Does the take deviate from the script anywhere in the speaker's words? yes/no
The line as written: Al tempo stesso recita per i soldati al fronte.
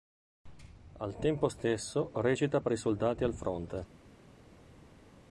no